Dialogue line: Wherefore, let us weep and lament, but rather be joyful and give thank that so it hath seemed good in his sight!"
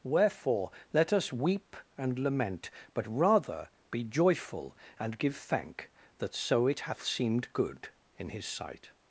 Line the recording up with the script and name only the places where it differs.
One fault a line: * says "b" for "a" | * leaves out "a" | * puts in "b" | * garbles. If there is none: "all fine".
all fine